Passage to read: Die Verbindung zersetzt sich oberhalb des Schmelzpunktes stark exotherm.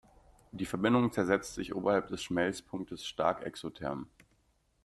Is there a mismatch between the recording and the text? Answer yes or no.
no